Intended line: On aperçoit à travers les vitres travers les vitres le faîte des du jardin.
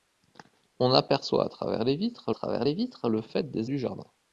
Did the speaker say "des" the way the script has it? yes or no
yes